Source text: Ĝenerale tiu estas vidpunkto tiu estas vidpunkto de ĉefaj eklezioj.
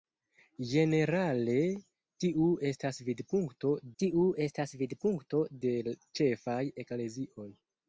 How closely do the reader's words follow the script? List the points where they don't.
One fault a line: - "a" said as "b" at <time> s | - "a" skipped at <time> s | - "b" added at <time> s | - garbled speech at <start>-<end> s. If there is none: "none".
none